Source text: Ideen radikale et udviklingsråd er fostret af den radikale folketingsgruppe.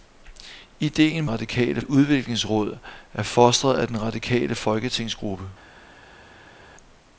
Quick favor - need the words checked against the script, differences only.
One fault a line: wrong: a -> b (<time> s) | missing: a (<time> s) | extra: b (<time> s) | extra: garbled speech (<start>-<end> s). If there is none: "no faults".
no faults